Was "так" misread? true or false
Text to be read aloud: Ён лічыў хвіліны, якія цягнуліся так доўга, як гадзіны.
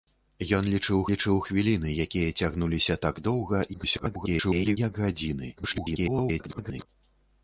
false